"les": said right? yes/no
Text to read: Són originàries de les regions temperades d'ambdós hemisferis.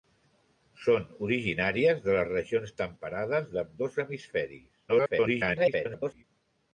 yes